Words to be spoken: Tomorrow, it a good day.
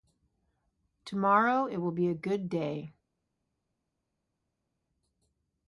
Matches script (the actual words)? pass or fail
fail